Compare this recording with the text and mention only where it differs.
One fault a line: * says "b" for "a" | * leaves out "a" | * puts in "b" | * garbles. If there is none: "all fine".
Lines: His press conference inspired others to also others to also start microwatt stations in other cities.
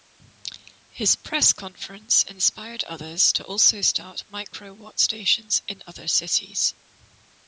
* leaves out "others to also"